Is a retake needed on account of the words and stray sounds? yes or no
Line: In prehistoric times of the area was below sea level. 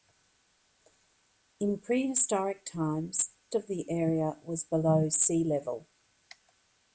no